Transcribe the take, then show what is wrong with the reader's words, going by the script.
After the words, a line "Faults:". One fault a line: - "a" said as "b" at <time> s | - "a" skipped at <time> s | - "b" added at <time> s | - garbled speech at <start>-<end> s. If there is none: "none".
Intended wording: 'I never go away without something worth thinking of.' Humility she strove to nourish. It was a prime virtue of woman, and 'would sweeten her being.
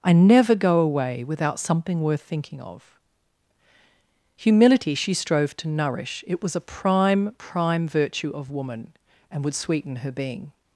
'I never go away without something worth thinking of.' Humility she strove to nourish. It was a prime prime virtue of woman, and 'would sweeten her being.
Faults:
- "prime" added at 7.4 s